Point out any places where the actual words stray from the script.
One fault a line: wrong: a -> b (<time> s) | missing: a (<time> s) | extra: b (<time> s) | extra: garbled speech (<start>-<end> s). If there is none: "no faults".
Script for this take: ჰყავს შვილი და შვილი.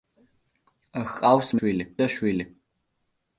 no faults